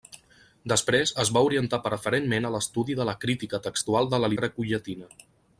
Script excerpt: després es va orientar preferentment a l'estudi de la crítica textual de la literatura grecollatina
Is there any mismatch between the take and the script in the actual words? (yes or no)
yes